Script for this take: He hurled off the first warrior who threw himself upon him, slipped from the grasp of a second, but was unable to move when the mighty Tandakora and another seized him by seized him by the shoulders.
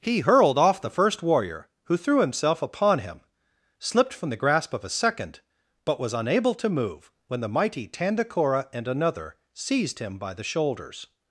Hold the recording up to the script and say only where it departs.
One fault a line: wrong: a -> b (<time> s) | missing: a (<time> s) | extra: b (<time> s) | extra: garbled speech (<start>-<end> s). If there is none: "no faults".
missing: seized him by (10.3 s)